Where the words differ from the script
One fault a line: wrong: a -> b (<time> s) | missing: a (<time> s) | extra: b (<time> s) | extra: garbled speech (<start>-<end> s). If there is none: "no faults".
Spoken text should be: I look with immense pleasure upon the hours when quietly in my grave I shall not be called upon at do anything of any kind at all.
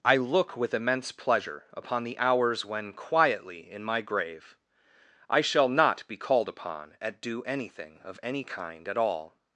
no faults